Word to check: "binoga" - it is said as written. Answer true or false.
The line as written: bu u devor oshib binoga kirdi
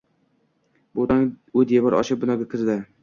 true